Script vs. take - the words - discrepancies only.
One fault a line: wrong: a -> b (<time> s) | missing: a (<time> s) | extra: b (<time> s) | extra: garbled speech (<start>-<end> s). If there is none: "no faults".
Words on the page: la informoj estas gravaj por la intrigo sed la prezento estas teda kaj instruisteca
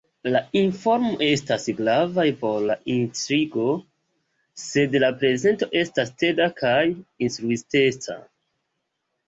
no faults